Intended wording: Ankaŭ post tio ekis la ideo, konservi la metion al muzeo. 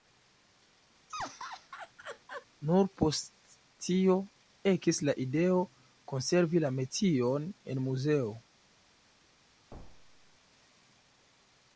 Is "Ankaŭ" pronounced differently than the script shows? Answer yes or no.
yes